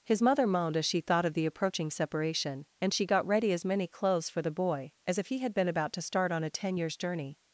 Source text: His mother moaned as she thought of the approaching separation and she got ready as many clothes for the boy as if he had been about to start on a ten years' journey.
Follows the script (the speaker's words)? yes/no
yes